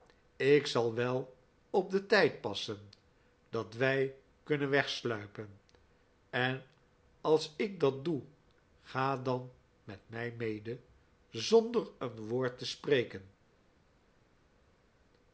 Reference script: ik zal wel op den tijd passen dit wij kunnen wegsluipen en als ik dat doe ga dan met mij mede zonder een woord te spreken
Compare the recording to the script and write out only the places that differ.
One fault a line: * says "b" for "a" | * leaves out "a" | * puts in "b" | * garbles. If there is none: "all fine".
* says "dat" for "dit"